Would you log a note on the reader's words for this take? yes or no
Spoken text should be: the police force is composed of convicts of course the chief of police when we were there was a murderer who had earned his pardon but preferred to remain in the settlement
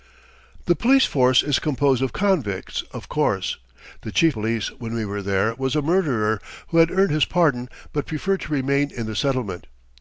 yes